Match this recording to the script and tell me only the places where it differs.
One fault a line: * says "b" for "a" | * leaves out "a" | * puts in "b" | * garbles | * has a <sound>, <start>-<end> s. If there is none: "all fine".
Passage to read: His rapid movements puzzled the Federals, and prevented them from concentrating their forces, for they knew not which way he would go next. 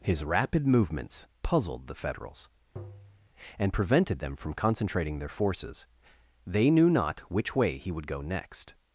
* has a tap, 2.8-3.3 s
* leaves out "for"